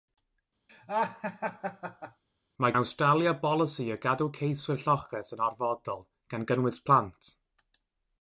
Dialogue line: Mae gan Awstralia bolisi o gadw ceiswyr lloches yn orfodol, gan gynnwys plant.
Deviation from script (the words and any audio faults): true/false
true